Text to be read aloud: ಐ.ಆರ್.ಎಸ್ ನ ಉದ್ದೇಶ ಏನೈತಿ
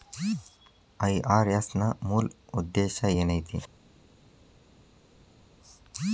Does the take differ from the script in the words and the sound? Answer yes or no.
yes